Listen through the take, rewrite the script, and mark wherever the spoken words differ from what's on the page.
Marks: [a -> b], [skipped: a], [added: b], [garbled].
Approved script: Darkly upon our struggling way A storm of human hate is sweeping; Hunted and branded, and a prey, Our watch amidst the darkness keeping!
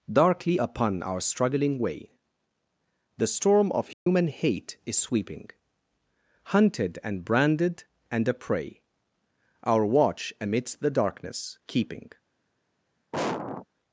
Darkly upon our struggling way [A -> The] storm of human hate is sweeping; Hunted and branded, and a prey, Our watch amidst the darkness keeping!